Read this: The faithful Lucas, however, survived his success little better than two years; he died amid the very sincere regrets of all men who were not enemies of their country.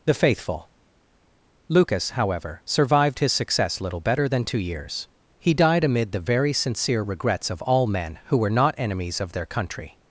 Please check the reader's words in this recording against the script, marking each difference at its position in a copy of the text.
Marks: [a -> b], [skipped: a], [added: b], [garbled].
The faithful Lucas, however, survived his success little better than two years; he died amid the very sincere regrets of all men who were not enemies of their country.